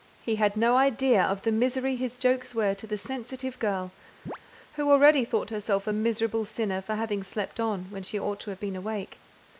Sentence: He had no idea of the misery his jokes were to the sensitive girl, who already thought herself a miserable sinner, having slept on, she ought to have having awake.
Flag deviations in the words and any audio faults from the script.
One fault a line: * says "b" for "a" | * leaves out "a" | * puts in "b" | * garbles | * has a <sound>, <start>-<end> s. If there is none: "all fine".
* has a chirp, 4.3-4.4 s
* puts in "for"
* puts in "when"
* says "been" for "having"